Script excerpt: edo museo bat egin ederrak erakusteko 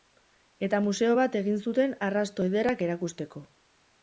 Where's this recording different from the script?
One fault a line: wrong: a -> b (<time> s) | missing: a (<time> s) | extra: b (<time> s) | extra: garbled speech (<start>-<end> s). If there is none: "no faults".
wrong: edo -> eta (0.7 s)
extra: zuten arrasto (1.6 s)